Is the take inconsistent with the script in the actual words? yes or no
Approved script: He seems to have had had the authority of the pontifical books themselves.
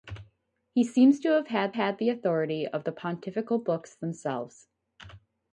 no